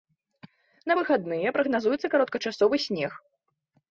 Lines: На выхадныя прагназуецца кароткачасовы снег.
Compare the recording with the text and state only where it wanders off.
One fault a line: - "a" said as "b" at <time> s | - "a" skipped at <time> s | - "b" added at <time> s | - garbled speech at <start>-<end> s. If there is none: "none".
none